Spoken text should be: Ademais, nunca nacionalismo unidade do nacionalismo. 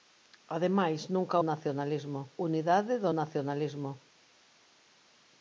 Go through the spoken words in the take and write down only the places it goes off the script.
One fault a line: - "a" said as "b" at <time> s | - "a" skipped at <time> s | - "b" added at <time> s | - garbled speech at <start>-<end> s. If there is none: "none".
none